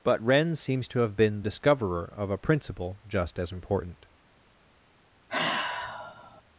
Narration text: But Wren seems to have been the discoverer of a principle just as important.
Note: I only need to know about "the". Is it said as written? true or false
false